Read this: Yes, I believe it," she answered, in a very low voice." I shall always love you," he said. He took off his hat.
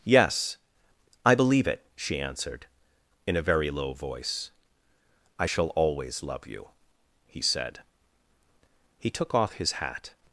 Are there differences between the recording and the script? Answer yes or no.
no